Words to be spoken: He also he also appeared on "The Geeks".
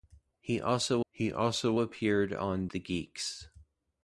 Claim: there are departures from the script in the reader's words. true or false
false